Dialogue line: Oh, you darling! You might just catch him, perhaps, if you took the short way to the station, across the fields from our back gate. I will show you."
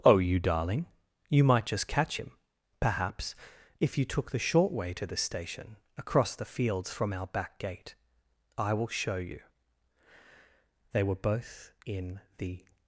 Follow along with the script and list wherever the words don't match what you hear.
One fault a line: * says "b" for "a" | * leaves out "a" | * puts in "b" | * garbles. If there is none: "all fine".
* puts in "They were both in the"